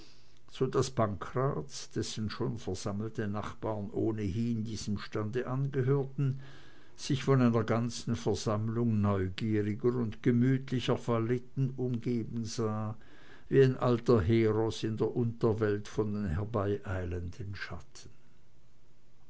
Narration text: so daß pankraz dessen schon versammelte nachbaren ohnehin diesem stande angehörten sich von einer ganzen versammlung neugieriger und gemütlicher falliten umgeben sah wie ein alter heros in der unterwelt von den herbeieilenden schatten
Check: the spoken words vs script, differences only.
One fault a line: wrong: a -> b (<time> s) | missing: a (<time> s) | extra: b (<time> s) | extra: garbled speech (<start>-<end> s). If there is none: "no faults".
no faults